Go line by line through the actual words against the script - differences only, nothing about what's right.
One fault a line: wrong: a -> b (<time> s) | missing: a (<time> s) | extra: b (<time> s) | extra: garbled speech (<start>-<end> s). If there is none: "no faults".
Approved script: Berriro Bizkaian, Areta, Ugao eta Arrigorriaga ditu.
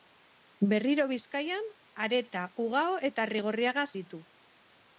no faults